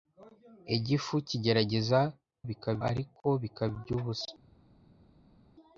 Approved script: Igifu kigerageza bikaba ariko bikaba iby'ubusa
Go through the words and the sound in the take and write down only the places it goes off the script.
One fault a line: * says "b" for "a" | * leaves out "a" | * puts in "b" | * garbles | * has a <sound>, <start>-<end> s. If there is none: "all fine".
all fine